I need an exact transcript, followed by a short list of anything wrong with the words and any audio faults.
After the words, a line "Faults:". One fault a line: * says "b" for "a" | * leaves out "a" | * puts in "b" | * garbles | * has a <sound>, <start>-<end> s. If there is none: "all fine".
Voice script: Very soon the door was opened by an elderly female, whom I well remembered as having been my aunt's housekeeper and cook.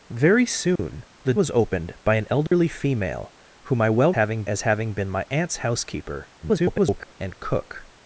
Very soon the was opened by an elderly female, whom I well having as having been my aunt's housekeeper [garbled] and cook.
Faults:
* has a dropout, 0.8-0.8 s
* leaves out "door"
* has a dropout, 2.5-2.5 s
* says "having" for "remembered"
* garbles